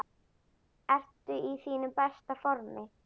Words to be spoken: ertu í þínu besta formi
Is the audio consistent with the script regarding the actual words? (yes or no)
yes